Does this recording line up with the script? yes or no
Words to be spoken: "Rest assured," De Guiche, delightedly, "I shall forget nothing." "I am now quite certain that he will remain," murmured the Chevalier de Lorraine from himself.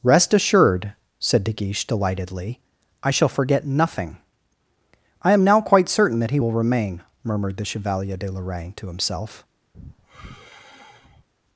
no